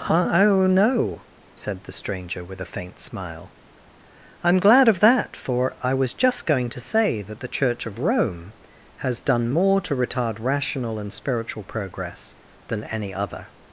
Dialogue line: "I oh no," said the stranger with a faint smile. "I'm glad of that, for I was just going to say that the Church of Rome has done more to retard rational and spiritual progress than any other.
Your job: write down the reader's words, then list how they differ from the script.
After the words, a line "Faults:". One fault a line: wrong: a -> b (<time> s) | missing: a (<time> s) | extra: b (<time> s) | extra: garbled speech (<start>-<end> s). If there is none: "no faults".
"I oh no," said the stranger with a faint smile. "I'm glad of that, for I was just going to say that the Church of Rome has done more to retard rational and spiritual progress than any other.
Faults:
no faults